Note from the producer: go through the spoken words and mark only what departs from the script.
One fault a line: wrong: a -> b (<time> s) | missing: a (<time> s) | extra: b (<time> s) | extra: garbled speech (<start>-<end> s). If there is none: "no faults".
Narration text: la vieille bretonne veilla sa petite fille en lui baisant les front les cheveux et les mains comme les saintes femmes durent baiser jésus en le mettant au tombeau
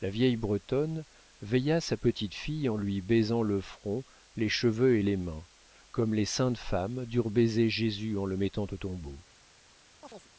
wrong: les -> le (3.4 s)